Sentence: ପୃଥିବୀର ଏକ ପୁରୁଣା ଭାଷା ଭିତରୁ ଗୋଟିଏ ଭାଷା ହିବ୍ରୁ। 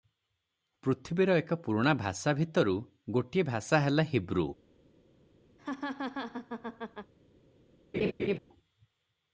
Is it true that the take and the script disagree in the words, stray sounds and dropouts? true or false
true